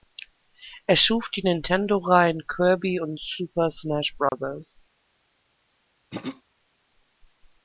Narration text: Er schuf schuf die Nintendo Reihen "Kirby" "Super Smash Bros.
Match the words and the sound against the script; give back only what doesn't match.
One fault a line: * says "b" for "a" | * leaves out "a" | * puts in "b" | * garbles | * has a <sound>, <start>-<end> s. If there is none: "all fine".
* leaves out "schuf"
* puts in "und"
* has a dropout, 4.3-4.3 s
* has a throat clearing, 6.1-6.4 s